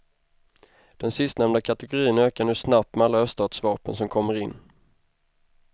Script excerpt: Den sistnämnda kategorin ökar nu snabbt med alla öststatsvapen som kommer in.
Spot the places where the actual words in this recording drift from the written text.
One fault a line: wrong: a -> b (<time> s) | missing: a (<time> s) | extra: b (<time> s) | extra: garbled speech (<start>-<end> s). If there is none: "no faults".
no faults